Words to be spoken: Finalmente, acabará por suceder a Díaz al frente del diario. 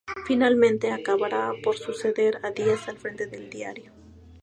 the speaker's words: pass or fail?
pass